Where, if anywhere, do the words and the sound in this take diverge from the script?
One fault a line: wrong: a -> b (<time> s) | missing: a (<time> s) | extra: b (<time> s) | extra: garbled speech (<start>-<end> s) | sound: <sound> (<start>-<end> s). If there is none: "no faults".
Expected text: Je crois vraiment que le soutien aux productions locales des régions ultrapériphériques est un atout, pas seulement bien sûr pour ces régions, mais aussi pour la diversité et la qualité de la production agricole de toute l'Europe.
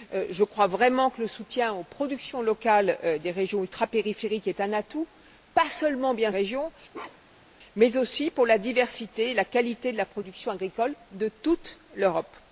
missing: sûr pour ces (6.3 s)
sound: bark (6.9-7.5 s)